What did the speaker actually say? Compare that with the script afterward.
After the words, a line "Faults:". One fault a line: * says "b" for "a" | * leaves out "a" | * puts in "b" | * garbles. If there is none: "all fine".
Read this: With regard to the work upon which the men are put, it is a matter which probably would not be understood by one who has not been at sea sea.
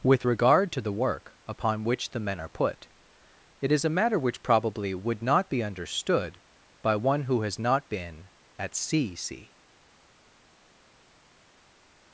With regard to the work upon which the men are put, it is a matter which probably would not be understood by one who has not been at sea sea.
Faults:
all fine